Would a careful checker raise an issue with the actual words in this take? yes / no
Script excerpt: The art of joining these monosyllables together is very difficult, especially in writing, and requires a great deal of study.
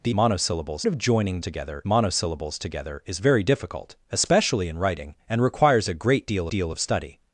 yes